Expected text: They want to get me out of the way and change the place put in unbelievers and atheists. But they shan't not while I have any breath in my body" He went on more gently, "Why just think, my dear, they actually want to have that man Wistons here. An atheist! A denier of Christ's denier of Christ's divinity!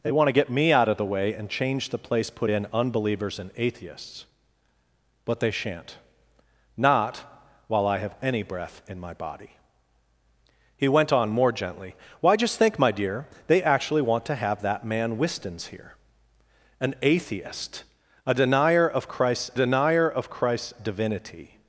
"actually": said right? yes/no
yes